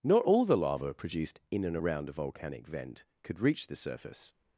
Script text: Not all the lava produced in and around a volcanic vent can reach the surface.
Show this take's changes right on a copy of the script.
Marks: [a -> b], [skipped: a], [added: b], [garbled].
Not all the lava produced in and around a volcanic vent [can -> could] reach the surface.